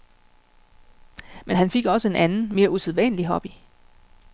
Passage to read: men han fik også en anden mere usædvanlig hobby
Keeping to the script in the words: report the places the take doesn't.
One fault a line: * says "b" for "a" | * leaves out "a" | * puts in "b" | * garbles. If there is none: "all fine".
all fine